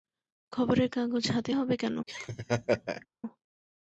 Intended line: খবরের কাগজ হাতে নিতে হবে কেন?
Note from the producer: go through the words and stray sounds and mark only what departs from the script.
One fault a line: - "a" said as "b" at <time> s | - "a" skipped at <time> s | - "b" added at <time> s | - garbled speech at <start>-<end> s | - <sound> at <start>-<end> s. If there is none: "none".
- "নিতে" skipped at 1.5 s
- laugh at 2.1-3.1 s